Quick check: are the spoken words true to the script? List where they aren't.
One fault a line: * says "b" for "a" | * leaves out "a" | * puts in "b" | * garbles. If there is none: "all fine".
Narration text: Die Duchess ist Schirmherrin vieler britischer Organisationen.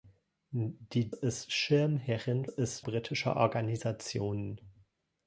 * leaves out "Duchess"
* says "ist" for "vieler"